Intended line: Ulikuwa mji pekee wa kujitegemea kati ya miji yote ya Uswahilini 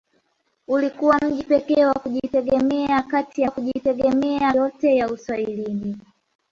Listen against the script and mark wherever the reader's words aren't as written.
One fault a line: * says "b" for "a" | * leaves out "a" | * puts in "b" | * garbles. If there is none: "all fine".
* says "kujitegemea" for "miji"